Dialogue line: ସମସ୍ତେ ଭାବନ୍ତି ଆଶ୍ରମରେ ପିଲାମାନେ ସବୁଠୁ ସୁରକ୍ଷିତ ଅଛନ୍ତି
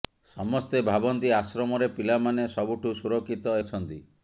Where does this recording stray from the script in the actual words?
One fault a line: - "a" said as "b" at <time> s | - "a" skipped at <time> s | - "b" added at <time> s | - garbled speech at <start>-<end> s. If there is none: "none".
none